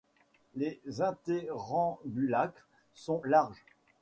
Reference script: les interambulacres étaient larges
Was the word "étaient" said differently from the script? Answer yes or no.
yes